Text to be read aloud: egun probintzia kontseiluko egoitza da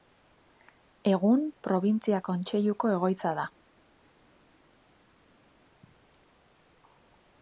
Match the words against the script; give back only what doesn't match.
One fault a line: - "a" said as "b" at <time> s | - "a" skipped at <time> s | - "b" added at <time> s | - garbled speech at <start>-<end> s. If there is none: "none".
none